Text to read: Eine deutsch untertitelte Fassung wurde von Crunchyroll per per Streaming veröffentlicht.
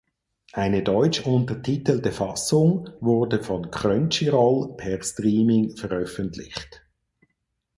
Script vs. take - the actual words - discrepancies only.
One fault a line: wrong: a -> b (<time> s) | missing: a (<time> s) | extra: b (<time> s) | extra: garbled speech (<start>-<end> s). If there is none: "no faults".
missing: per (5.0 s)